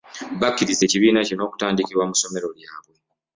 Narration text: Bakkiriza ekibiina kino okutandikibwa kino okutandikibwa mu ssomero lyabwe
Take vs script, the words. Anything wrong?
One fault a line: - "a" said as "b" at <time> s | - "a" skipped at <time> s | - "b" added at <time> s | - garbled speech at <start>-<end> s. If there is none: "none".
- "kino okutandikibwa" skipped at 2.0 s